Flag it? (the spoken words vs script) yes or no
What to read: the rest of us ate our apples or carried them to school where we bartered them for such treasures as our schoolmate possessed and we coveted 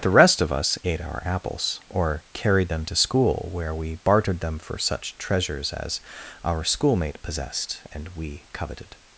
no